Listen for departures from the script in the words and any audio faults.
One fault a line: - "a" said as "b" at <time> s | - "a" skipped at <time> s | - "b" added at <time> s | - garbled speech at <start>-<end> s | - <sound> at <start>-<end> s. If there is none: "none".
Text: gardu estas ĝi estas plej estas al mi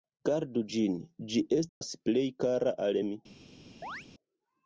- "estas" said as "ĝin" at 0.8 s
- dropout at 1.7-1.8 s
- "estas" said as "kara" at 2.5 s
- chirp at 3.8-4.1 s